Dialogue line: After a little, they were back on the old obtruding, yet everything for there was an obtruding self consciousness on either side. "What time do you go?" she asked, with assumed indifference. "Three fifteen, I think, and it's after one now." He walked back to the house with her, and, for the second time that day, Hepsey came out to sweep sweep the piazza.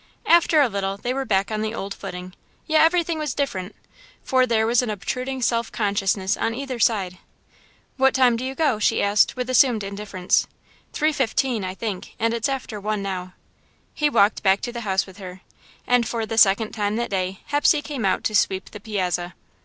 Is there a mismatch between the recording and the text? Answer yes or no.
yes